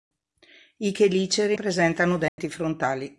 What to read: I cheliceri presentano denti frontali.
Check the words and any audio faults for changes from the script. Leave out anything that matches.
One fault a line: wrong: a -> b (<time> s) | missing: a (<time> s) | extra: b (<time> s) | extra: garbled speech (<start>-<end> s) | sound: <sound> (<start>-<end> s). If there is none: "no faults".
sound: dropout (2.3-2.4 s)